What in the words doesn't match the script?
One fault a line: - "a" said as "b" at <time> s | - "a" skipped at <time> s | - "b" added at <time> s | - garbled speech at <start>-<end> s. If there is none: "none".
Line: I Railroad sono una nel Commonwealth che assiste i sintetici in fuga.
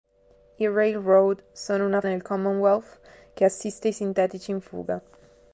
none